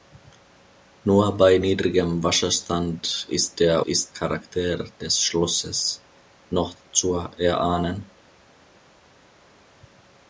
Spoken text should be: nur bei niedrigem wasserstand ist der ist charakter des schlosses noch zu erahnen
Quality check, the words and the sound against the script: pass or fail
pass